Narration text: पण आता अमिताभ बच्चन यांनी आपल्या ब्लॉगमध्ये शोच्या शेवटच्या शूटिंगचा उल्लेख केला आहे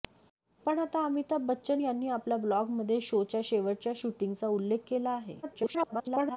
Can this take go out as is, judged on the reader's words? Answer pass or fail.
fail